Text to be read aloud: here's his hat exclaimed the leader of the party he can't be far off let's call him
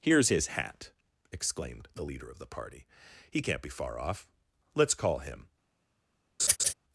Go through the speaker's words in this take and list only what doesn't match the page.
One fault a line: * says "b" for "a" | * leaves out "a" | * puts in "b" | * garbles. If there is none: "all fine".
all fine